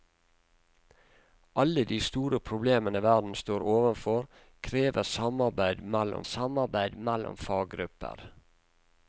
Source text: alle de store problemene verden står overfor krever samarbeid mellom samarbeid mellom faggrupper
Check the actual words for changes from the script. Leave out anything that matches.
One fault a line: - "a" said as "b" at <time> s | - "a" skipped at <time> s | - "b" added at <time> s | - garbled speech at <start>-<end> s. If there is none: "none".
none